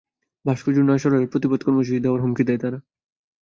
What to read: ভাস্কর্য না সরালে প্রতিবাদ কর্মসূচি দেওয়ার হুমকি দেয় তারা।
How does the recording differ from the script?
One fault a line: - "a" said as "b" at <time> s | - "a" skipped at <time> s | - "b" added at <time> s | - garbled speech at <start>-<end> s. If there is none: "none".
none